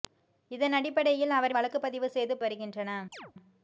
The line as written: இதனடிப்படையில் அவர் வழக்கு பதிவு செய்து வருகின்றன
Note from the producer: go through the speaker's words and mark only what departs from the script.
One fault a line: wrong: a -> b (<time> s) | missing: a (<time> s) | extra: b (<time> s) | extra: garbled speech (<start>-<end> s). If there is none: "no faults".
no faults